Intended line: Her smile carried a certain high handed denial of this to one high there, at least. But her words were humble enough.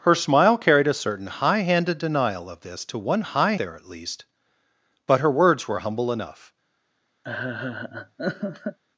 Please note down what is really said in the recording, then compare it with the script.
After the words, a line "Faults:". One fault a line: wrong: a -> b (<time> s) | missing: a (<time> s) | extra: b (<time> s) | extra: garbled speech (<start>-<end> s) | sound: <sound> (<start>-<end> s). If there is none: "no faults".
Her smile carried a certain high handed denial of this to one high there, at least. But her words were humble enough.
Faults:
sound: laugh (7.2-8.8 s)